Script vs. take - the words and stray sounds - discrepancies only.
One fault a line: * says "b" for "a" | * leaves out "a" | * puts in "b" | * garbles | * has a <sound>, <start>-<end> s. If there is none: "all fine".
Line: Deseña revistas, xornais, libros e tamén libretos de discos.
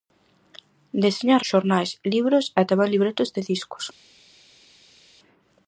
* leaves out "revistas"